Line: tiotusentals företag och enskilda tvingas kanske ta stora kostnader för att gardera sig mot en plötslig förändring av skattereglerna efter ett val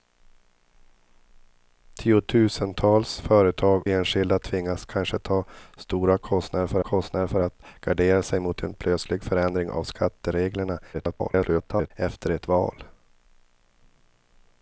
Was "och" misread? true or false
true